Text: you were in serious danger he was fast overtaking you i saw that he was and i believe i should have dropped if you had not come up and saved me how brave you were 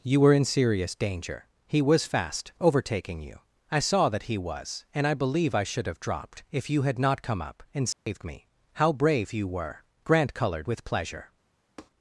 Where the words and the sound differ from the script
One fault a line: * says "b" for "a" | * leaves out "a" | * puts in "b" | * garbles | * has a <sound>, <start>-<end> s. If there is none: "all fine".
* has a dropout, 7.9-8.1 s
* puts in "grant colored with pleasure"
* has a tap, 11.8-11.9 s